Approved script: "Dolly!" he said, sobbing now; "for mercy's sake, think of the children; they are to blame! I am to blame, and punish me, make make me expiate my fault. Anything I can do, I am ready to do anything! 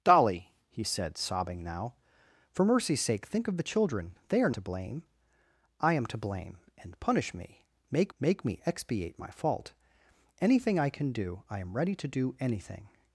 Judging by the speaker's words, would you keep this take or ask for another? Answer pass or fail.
pass